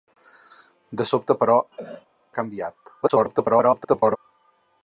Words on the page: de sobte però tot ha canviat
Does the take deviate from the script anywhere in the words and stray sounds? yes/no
yes